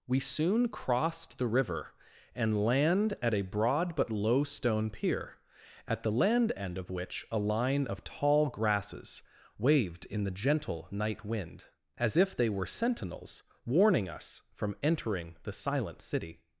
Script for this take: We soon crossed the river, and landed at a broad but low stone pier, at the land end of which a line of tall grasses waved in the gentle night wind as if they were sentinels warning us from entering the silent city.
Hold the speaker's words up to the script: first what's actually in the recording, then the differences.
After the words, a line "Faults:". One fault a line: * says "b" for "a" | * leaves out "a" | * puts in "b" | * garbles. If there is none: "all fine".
We soon crossed the river, and land at a broad but low stone pier, at the land end of which a line of tall grasses waved in the gentle night wind as if they were sentinels warning us from entering the silent city.
Faults:
* says "land" for "landed"